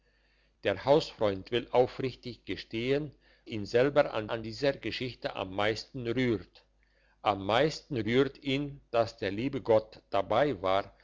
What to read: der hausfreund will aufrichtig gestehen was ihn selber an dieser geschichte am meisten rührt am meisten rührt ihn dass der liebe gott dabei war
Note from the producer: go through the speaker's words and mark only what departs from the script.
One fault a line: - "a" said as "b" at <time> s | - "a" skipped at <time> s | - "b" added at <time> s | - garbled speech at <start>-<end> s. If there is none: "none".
- "was" skipped at 3.1 s
- "an" added at 4.3 s